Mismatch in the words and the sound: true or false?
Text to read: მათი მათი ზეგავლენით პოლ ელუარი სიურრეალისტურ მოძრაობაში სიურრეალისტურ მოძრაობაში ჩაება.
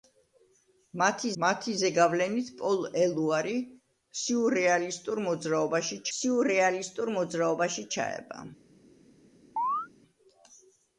true